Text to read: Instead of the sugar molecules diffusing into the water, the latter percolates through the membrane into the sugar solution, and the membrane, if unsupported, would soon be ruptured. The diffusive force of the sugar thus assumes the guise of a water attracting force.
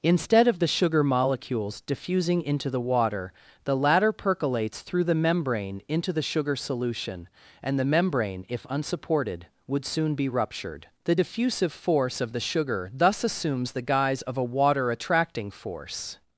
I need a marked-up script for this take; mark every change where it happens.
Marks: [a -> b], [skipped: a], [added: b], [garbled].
Instead of the sugar molecules diffusing into the water, the latter percolates through the membrane into the sugar solution, and the membrane, if unsupported, would soon be ruptured. The diffusive force of the sugar thus assumes the guise of a water attracting force.